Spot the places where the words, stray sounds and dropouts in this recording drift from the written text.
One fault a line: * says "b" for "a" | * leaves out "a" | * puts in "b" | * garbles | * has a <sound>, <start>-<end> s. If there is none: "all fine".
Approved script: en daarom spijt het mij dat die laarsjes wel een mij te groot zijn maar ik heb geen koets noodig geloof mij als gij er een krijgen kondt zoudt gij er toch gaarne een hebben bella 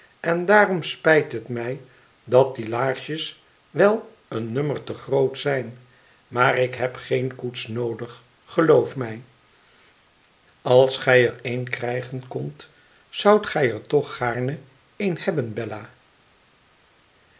* says "nummer" for "mij"